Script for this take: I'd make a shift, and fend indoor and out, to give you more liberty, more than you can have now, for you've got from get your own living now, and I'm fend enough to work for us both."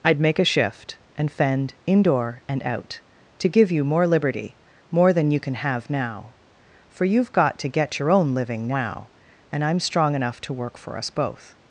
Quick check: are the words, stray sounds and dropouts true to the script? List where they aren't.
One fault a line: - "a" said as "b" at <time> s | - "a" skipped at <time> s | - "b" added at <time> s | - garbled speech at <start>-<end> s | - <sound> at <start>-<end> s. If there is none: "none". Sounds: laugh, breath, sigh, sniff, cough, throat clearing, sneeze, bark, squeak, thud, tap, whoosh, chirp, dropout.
- "from" said as "to" at 7.6 s
- "fend" said as "strong" at 9.8 s